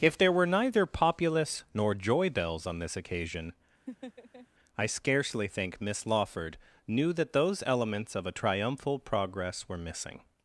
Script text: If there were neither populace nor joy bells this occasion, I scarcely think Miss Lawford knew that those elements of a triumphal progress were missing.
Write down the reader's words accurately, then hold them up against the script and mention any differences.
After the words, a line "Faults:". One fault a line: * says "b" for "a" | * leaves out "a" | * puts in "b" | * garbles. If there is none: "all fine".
If there were neither populace nor joy bells on this occasion, I scarcely think Miss Lawford knew that those elements of a triumphal progress were missing.
Faults:
* puts in "on"